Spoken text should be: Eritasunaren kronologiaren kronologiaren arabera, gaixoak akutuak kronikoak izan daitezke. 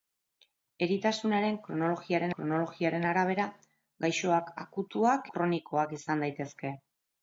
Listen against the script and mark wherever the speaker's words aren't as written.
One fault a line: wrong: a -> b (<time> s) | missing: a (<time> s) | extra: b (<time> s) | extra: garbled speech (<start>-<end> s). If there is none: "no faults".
no faults